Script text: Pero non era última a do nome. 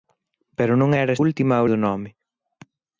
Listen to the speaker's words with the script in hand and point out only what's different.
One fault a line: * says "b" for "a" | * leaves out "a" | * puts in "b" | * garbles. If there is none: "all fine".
all fine